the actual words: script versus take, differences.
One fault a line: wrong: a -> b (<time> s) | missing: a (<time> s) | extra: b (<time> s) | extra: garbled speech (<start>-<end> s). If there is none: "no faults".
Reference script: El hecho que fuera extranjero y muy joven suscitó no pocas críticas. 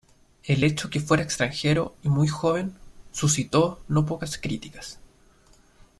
no faults